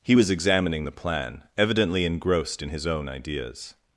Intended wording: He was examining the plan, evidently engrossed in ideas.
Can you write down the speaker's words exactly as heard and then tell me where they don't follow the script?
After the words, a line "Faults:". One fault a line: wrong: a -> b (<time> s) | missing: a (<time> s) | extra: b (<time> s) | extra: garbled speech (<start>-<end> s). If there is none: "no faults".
He was examining the plan, evidently engrossed in his own ideas.
Faults:
extra: his own (2.7 s)